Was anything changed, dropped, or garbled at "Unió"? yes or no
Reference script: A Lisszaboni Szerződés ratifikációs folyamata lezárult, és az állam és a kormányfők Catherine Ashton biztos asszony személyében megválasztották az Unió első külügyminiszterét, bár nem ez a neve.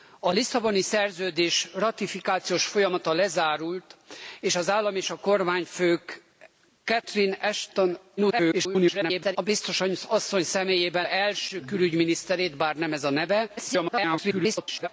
yes